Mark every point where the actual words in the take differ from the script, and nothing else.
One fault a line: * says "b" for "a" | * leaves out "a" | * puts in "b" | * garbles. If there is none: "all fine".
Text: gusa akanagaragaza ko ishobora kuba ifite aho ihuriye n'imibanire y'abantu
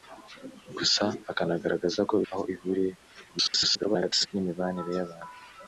* leaves out "ishobora kuba ifite"
* garbles